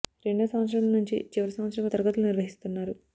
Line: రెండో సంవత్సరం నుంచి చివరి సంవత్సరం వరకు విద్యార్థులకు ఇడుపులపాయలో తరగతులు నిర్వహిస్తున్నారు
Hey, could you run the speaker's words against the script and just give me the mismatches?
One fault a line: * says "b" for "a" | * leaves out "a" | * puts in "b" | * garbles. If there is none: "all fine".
* leaves out "వరకు విద్యార్థులకు ఇడుపులపాయలో"